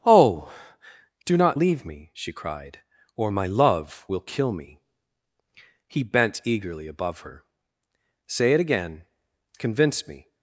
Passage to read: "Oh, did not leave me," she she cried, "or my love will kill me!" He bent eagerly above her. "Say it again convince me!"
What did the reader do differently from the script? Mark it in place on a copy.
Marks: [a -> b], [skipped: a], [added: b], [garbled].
"Oh, [did -> do] not leave me," she [skipped: she] cried, "or my love will kill me!" He bent eagerly above her. "Say it again convince me!"